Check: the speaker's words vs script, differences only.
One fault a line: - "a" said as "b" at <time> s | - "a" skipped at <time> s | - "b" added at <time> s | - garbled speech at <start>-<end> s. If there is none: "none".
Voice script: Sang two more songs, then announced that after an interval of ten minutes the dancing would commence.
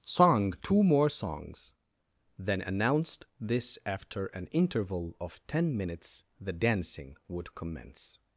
- "that" said as "this" at 3.4 s